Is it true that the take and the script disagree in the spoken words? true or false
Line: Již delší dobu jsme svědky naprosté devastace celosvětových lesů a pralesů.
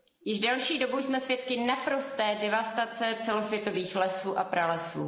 false